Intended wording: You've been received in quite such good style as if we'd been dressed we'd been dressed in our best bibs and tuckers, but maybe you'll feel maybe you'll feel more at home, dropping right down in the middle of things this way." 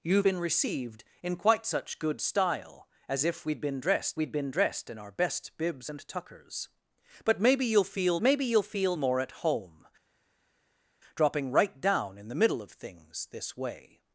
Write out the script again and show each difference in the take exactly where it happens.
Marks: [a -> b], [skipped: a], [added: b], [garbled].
You've been received in quite such good style as if we'd been dressed we'd been dressed in our best bibs and tuckers, but maybe you'll feel maybe you'll feel more at home, dropping right down in the middle of things this way."